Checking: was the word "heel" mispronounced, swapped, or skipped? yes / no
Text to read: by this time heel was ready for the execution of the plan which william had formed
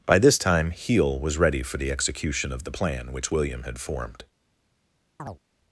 no